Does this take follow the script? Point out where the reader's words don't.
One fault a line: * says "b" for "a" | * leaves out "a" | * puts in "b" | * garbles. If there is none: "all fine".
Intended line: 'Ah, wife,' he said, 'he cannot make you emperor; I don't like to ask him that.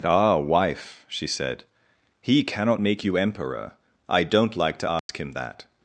* says "she" for "he"